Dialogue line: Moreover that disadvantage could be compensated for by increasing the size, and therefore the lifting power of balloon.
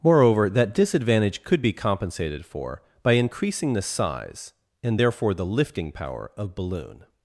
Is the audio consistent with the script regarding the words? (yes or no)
yes